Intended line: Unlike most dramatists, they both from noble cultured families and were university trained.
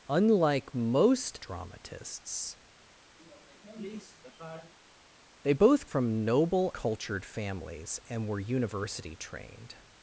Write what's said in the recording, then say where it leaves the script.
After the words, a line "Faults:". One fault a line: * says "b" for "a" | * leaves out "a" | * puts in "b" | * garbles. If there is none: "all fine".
Unlike most dramatists, they both from noble cultured families and were university trained.
Faults:
all fine